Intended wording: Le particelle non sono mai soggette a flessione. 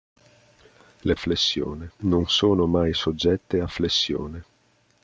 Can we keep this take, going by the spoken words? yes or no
no